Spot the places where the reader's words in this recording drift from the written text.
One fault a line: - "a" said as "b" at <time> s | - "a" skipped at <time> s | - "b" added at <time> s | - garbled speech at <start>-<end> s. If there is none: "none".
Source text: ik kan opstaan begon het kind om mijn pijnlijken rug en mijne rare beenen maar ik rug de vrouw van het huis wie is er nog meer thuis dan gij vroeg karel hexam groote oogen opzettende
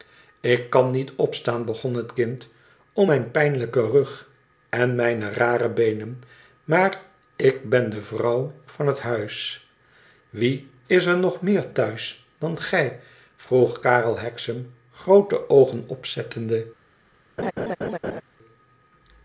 - "niet" added at 0.9 s
- "rug" said as "ben" at 7.7 s